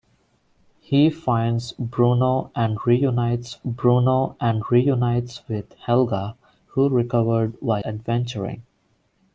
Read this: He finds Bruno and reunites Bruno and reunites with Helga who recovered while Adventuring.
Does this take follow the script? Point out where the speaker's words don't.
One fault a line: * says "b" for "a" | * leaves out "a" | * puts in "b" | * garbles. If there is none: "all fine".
all fine